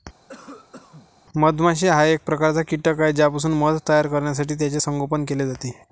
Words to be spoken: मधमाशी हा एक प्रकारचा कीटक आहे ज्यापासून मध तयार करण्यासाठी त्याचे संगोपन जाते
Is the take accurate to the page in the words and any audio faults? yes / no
no